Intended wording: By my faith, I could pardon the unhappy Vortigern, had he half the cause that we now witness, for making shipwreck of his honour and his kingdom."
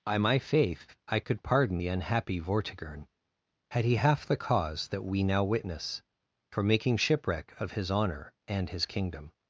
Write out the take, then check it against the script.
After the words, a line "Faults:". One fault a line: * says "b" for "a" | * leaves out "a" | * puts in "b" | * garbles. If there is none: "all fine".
By my faith, I could pardon the unhappy Vortigern, had he half the cause that we now witness, for making shipwreck of his honour and his kingdom."
Faults:
all fine